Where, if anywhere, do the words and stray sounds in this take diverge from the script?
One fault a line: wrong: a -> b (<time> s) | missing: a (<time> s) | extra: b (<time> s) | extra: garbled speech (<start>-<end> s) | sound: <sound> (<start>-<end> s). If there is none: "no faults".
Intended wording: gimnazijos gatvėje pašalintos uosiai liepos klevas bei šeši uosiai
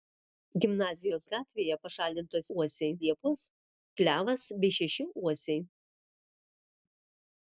no faults